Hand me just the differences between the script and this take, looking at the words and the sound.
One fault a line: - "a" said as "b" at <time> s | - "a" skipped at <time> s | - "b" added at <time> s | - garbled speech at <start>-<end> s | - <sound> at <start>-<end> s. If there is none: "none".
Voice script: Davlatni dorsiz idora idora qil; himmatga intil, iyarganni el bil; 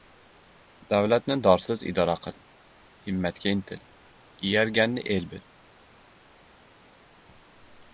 - "idora" skipped at 2.1 s